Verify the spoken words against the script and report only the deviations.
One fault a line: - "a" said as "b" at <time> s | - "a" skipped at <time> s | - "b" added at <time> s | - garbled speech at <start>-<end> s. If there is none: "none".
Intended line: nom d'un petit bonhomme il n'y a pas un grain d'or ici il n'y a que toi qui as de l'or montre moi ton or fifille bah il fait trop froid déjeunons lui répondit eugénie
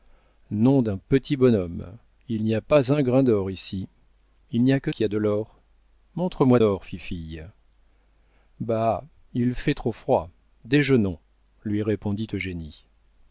- "toi" skipped at 4.9 s
- "ton" skipped at 6.6 s